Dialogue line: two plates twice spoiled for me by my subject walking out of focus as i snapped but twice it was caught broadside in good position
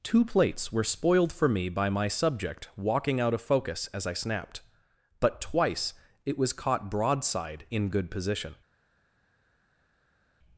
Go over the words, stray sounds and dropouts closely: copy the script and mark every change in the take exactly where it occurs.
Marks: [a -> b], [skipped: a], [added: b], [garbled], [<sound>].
two plates [twice -> were] spoiled for me by my subject walking out of focus as i snapped but twice it was caught broadside in good position